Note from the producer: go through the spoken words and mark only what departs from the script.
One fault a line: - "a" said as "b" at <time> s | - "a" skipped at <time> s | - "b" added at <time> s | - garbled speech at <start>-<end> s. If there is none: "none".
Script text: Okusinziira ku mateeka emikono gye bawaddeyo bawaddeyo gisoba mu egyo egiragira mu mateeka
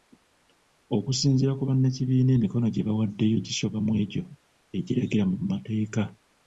- "mateeka" said as "bannakibiina" at 1.7 s
- "bawaddeyo" skipped at 3.4 s